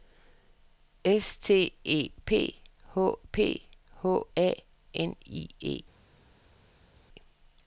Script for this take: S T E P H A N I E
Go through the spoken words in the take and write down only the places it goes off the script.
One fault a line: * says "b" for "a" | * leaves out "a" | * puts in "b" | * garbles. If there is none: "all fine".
* puts in "P H"